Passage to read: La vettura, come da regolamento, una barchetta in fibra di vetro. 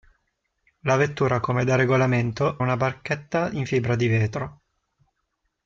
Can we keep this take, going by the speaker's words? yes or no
yes